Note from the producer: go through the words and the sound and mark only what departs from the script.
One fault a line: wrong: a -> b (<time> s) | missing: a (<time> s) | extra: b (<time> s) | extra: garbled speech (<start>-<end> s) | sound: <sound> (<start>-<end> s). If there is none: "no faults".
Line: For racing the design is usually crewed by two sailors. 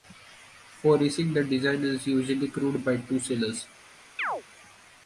sound: chirp (4.2-4.4 s)